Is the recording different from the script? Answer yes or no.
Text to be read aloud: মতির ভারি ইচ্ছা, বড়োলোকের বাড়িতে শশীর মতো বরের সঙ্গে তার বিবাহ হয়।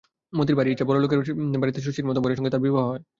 no